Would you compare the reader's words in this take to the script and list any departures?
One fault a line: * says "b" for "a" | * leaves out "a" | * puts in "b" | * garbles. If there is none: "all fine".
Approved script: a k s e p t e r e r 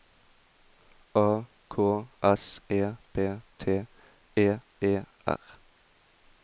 * leaves out "r"